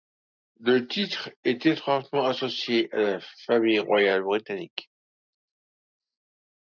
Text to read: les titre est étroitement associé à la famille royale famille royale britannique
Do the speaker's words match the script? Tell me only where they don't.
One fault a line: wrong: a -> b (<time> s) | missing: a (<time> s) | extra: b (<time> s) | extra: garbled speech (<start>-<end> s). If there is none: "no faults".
wrong: les -> le (0.6 s)
missing: famille royale (4.2 s)